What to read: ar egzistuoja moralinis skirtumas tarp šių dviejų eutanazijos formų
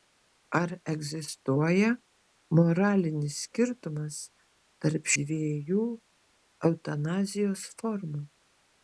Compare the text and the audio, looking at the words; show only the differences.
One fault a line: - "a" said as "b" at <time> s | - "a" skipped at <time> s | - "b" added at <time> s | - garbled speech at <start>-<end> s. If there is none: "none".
- "šių" skipped at 5.1 s